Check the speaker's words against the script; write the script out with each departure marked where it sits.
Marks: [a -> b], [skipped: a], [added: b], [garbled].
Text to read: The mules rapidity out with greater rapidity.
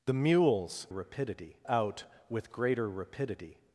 The mules rapidity out with greater rapidity.